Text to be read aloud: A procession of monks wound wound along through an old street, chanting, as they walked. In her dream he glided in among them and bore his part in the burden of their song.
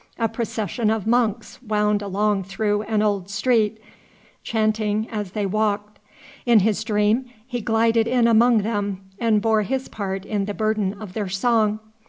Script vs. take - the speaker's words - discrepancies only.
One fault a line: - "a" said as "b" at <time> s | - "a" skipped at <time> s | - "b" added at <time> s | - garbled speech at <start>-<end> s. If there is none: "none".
- "wound" skipped at 2.0 s
- "her" said as "his" at 6.6 s